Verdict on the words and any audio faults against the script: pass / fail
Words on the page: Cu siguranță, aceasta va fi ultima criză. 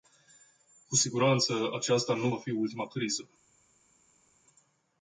fail